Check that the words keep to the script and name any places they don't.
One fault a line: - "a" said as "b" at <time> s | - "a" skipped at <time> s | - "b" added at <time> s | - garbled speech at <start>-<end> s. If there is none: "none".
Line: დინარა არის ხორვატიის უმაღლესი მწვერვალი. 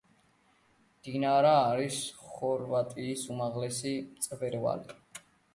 none